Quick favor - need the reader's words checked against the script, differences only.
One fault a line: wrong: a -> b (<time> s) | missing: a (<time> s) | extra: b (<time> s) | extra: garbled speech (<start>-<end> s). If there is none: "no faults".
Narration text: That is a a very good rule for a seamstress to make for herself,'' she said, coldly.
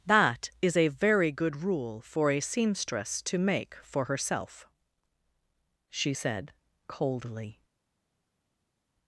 missing: a (0.9 s)